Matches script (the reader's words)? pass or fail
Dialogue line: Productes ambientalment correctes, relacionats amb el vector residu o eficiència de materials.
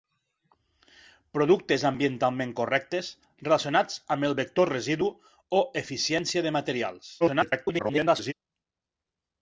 fail